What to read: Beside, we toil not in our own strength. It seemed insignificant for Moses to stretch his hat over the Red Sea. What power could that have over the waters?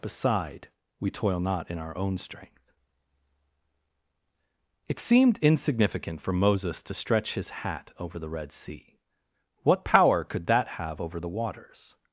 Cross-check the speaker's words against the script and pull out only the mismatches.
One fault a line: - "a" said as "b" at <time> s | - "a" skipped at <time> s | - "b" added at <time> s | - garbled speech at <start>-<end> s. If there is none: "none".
none